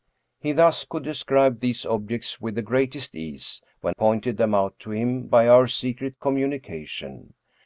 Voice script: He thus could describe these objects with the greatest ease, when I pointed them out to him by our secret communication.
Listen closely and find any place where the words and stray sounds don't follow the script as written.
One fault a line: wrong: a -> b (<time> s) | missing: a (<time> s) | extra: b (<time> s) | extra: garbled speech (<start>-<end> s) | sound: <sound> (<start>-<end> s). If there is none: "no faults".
missing: I (4.0 s)